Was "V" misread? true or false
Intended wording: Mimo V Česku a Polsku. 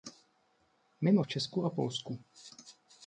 false